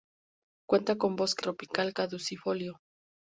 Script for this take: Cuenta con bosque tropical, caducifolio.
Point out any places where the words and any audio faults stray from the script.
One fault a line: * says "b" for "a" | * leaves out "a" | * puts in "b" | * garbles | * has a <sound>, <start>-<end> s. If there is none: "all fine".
all fine